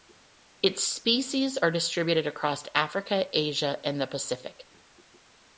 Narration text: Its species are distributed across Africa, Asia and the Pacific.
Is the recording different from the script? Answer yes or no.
no